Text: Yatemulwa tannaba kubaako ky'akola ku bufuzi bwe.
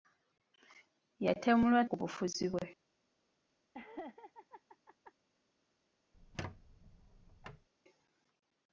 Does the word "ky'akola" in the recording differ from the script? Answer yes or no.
yes